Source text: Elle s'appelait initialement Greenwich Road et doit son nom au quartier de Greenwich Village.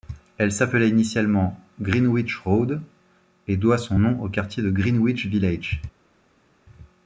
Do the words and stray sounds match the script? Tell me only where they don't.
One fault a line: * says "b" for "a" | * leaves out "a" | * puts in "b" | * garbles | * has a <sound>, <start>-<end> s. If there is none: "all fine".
all fine